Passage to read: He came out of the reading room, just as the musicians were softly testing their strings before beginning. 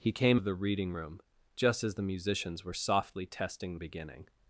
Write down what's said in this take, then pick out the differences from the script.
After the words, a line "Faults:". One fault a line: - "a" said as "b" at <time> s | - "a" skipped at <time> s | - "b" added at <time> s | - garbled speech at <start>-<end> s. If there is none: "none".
He came of the reading room, just as the musicians were softly testing beginning.
Faults:
- "out" skipped at 0.4 s
- "their strings before" skipped at 3.8 s